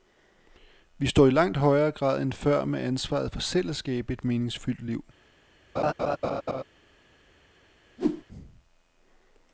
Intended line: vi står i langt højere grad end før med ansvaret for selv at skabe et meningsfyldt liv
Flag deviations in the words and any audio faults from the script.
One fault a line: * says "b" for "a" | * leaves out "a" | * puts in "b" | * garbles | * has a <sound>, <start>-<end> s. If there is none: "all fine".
* has a laugh, 5.8-6.6 s
* has a whoosh, 8.0-8.2 s